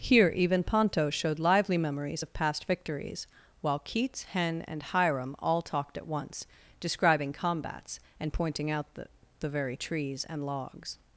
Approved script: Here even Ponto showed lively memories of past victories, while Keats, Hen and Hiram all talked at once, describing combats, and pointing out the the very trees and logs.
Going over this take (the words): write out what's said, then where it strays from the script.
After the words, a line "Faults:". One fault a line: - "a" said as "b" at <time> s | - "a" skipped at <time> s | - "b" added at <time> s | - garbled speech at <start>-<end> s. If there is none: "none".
Here even Ponto showed lively memories of past victories, while Keats, Hen and Hiram all talked at once, describing combats, and pointing out the the very trees and logs.
Faults:
none